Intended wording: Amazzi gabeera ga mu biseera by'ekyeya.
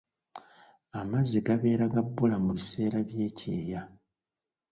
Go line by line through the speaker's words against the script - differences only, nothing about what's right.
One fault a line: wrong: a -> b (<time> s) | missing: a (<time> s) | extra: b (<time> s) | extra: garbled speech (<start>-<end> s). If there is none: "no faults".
extra: bbula (2.1 s)